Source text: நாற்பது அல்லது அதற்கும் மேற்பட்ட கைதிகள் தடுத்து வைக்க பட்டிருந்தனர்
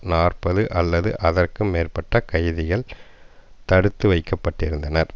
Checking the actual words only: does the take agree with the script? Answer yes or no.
yes